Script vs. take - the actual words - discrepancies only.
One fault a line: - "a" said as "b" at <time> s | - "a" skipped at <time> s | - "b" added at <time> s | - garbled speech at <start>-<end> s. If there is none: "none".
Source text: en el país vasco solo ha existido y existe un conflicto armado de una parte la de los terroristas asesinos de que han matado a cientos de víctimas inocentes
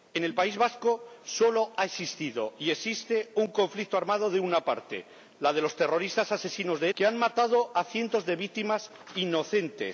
none